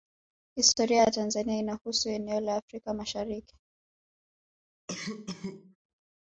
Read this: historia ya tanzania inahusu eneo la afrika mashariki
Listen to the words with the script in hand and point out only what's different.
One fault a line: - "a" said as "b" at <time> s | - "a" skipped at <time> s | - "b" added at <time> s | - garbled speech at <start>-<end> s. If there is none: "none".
none